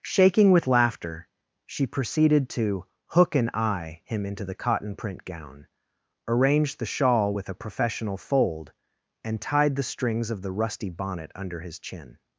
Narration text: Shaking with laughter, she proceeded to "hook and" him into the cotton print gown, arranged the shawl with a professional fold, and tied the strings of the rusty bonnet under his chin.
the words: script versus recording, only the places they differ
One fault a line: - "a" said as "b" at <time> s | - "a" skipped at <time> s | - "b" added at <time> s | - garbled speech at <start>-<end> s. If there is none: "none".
- "eye" added at 3.5 s